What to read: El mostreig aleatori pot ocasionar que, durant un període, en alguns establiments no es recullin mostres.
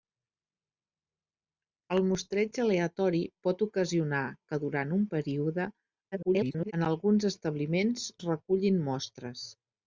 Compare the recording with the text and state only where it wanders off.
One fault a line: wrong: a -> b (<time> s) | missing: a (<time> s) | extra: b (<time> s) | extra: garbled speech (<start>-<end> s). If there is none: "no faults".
extra: garbled speech (6.1-6.7 s)
missing: no (8.1 s)